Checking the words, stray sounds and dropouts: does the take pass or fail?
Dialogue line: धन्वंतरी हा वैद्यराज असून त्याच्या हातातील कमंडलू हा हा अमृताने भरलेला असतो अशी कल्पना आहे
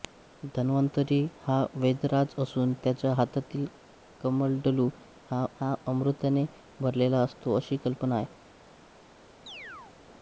fail